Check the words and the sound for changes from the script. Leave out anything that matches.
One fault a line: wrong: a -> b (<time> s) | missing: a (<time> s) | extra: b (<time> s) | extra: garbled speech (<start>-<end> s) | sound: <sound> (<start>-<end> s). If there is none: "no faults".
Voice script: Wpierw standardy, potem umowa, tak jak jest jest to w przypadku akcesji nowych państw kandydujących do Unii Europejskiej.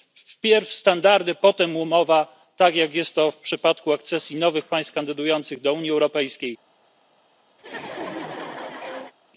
missing: jest (3.1 s)
sound: laugh (7.6-9.1 s)